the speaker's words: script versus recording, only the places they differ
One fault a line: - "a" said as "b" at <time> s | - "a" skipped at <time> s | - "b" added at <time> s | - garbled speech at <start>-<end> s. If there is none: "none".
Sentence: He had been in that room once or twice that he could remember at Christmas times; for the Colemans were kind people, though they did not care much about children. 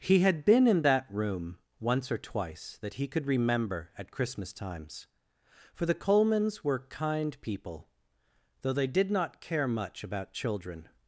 none